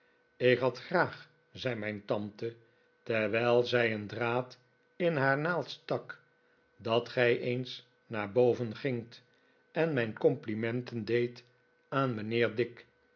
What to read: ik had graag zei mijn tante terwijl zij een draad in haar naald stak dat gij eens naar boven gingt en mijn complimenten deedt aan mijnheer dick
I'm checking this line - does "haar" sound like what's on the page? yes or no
yes